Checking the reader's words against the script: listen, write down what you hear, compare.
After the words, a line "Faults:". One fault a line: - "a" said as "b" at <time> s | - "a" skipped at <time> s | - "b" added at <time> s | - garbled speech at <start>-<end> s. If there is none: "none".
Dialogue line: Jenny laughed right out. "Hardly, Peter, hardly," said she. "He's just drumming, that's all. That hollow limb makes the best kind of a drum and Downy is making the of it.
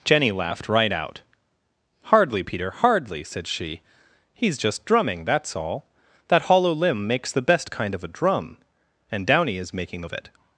Jenny laughed right out. "Hardly, Peter, hardly," said she. "He's just drumming, that's all. That hollow limb makes the best kind of a drum and Downy is making the of it.
Faults:
none